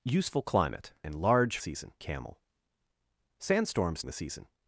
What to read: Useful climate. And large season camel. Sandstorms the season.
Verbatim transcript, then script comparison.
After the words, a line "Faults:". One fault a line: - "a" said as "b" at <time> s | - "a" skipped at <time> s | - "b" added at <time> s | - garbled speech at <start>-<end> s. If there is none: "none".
Useful climate. And large season camel. Sandstorms the season.
Faults:
none